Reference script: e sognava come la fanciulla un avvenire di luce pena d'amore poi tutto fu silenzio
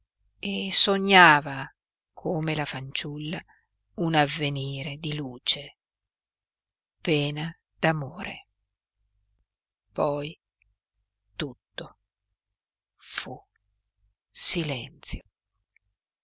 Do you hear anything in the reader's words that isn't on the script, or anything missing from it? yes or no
no